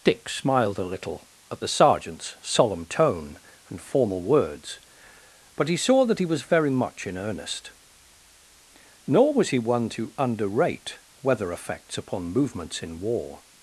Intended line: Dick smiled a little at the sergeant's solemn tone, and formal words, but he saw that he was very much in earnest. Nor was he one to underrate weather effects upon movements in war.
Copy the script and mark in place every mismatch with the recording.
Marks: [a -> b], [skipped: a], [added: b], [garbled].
Dick smiled a little at the sergeant's solemn tone, and formal words, but he saw that he was very much in earnest. Nor was he one to underrate weather effects upon movements in war.